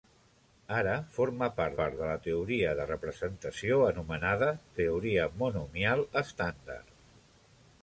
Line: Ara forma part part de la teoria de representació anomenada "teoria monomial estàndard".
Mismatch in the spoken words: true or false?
false